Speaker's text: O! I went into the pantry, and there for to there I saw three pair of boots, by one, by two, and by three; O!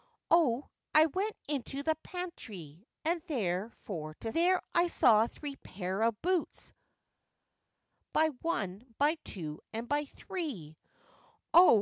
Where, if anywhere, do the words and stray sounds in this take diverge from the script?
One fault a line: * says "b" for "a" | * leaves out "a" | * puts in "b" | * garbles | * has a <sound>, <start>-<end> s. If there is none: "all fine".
all fine